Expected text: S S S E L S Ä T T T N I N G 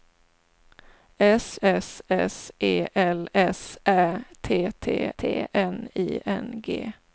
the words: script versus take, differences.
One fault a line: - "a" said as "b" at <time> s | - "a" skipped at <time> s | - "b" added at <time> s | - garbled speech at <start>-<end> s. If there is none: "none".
none